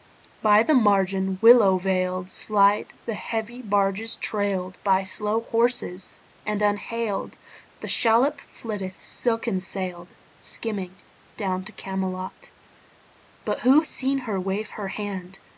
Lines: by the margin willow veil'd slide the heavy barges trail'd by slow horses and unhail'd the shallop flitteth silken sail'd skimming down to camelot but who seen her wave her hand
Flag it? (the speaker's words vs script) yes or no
no